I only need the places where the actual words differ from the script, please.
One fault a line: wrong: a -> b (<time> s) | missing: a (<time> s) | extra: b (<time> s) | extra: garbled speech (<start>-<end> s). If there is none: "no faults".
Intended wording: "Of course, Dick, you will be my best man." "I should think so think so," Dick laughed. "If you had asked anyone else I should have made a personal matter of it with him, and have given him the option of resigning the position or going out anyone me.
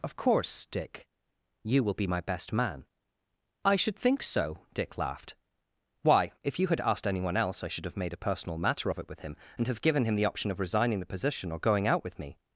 missing: think so (4.7 s)
extra: Why (6.0 s)
wrong: anyone -> with (12.0 s)